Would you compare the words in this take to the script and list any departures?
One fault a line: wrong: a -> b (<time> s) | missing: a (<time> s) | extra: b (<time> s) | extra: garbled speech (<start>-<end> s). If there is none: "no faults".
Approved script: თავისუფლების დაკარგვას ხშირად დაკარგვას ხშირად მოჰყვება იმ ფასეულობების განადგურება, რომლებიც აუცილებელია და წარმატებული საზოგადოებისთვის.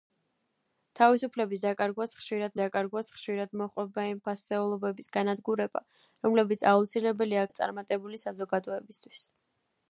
no faults